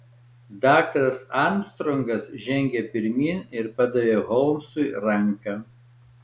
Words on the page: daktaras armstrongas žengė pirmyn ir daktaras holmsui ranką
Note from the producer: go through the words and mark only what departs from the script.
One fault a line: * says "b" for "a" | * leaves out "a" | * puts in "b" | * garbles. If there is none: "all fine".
* says "padavė" for "daktaras"